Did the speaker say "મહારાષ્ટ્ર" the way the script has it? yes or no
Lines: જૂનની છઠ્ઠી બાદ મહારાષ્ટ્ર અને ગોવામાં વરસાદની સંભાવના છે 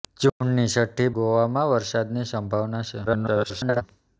no